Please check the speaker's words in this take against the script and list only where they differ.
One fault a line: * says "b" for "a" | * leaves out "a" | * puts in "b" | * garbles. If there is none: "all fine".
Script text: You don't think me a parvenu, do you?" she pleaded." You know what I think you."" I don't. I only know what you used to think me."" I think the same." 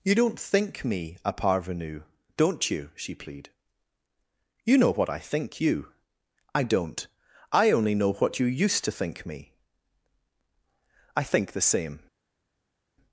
* says "don't" for "do"
* says "plead" for "pleaded"